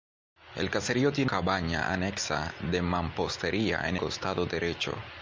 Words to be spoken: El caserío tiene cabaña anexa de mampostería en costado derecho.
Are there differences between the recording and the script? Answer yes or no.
no